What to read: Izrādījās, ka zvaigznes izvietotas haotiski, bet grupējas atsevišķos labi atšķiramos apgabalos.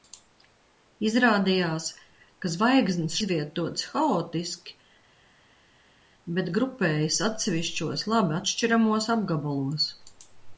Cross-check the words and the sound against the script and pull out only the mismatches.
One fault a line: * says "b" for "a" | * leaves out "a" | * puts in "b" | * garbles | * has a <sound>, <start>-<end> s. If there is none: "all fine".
all fine